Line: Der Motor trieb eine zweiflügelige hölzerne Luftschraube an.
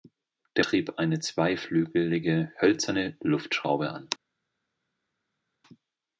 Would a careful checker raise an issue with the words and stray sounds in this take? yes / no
yes